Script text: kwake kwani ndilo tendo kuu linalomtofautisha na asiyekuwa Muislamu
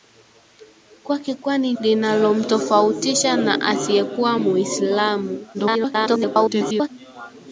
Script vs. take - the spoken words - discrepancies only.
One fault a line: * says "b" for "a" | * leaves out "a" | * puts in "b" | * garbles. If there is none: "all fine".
* leaves out "ndilo tendo kuu"
* garbles